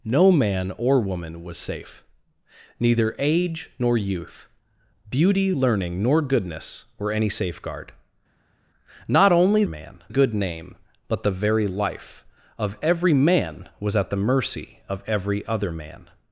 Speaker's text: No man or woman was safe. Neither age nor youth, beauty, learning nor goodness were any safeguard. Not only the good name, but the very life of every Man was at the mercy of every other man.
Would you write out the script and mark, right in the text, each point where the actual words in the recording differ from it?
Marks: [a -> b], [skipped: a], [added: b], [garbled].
No man or woman was safe. Neither age nor youth, beauty, learning nor goodness were any safeguard. Not only [the -> man] good name, but the very life of every Man was at the mercy of every other man.